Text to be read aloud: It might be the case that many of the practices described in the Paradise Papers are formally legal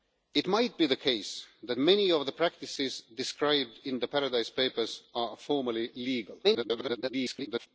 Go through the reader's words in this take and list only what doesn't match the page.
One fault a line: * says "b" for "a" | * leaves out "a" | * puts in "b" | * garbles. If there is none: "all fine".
* garbles